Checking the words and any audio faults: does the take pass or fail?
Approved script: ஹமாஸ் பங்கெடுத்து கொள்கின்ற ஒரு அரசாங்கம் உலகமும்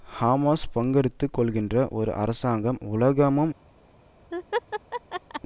fail